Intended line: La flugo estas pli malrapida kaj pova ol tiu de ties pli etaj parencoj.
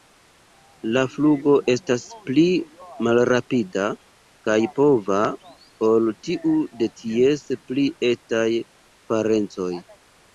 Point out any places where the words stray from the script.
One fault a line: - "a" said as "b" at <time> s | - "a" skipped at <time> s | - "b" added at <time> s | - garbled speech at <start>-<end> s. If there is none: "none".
none